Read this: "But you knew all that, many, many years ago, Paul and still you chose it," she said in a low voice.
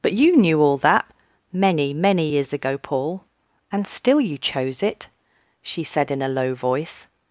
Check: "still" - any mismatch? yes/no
no